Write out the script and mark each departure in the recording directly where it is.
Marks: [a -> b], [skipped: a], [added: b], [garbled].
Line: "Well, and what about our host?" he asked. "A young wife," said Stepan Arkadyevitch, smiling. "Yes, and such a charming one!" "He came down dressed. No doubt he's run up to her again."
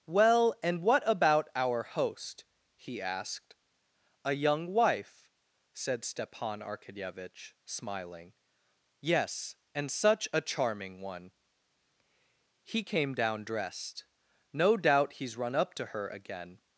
"Well, and what about our host?" he asked. "A young wife," said Stepan Arkadyevitch, smiling. "Yes, and such a charming one!" "He came down dressed. No doubt he's run up to her again."